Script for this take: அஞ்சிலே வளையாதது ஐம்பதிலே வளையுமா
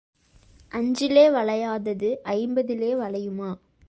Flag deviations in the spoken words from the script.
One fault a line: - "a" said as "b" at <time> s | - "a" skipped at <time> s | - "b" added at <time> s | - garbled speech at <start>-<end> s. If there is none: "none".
none